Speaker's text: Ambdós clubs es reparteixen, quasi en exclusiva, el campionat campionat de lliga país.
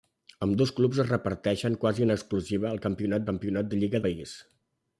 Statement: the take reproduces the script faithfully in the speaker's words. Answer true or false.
true